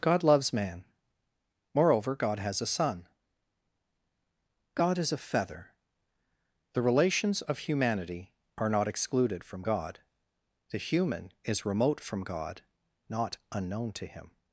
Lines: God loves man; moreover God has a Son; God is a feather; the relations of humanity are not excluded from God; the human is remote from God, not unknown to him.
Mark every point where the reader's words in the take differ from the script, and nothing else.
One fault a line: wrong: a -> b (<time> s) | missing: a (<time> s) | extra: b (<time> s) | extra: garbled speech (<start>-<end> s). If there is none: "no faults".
no faults